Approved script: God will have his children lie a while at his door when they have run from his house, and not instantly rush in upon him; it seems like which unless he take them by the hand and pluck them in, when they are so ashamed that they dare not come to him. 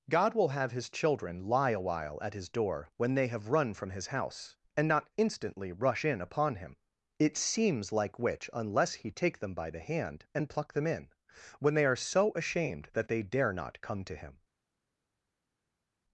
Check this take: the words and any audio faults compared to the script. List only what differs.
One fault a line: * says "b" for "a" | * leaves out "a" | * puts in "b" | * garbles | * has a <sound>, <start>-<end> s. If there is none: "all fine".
all fine